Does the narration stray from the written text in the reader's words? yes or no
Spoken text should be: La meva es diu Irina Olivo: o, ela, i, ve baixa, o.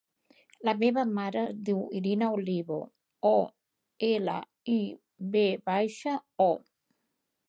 yes